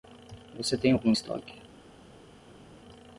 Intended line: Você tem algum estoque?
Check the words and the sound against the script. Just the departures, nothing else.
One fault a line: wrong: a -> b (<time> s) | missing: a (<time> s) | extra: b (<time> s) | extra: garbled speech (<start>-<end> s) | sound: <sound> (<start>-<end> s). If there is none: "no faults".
no faults